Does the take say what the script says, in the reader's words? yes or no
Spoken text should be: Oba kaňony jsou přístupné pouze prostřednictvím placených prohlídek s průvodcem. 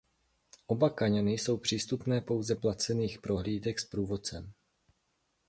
no